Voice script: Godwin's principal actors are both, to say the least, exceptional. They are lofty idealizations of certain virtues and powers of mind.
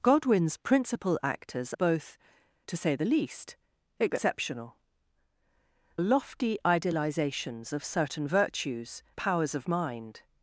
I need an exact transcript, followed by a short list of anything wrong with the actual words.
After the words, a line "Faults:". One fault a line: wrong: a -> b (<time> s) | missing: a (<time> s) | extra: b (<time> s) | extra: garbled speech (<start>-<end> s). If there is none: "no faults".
Godwin's principal actors both, to say the least, exceptional. Lofty idealizations of certain virtues powers of mind.
Faults:
missing: are (1.8 s)
missing: They are (4.7 s)
missing: and (9.0 s)